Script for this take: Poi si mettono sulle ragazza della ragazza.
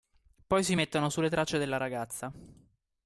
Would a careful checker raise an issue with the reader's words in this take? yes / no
yes